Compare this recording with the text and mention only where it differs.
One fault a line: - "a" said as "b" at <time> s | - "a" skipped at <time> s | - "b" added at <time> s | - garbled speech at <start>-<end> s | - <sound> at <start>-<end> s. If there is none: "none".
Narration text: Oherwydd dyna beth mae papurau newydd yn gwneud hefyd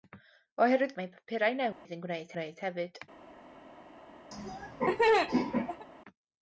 - "dyna beth" skipped at 0.9 s
- dropout at 1.7-1.9 s
- "gwneud" added at 2.3 s
- laugh at 4.3-5.9 s